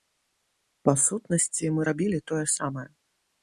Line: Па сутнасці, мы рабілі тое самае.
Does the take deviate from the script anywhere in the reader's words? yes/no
no